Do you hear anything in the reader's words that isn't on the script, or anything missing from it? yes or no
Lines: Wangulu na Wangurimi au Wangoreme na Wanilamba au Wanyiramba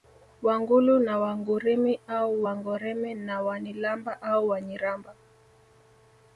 no